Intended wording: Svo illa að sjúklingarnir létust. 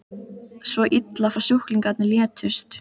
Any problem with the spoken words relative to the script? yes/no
no